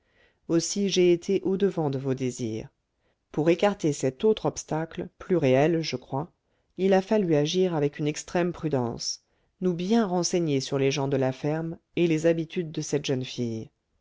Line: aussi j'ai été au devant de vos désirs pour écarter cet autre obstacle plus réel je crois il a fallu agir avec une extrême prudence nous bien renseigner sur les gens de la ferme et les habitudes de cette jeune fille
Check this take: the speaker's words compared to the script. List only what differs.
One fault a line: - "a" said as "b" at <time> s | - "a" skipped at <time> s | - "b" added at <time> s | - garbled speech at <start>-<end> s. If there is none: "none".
none